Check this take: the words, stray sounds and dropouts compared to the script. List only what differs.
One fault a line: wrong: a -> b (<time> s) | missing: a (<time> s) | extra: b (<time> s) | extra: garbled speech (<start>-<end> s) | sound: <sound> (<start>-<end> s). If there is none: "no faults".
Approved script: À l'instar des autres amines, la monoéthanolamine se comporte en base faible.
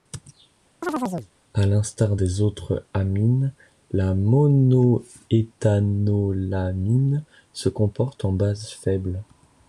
sound: chirp (0.8-1.3 s)